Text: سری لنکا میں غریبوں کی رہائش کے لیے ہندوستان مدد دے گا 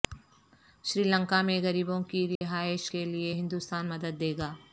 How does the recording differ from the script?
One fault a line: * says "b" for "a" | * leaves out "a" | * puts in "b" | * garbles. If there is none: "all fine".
all fine